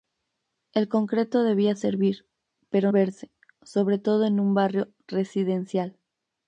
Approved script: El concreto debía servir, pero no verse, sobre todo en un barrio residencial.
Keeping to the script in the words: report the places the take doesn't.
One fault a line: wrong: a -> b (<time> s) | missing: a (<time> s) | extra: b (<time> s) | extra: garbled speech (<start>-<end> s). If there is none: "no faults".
missing: no (2.9 s)